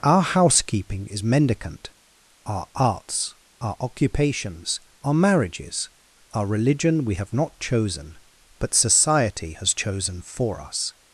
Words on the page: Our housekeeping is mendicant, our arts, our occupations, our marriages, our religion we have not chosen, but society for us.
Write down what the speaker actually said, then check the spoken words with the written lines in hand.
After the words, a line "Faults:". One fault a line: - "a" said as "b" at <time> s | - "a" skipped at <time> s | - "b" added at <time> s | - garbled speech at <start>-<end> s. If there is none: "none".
Our housekeeping is mendicant, our arts, our occupations, our marriages, our religion we have not chosen, but society has chosen for us.
Faults:
- "has chosen" added at 9.5 s